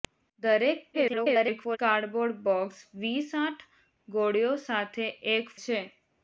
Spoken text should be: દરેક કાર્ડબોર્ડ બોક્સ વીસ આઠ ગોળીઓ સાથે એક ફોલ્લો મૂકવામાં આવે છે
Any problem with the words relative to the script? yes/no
yes